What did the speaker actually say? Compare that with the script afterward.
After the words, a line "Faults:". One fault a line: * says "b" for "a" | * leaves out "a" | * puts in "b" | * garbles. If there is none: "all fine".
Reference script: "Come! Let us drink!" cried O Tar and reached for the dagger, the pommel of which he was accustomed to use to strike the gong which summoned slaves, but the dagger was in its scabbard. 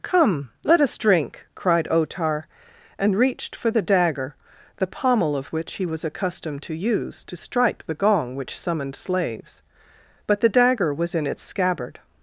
"Come! Let us drink!" cried O Tar and reached for the dagger, the pommel of which he was accustomed to use to strike the gong which summoned slaves, but the dagger was in its scabbard.
Faults:
all fine